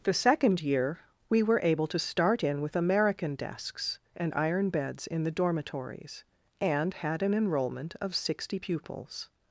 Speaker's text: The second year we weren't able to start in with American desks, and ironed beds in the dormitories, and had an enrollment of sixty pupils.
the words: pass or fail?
fail